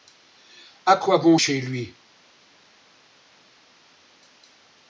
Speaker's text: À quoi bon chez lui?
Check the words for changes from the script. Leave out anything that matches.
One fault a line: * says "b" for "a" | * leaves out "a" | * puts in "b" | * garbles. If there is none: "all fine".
all fine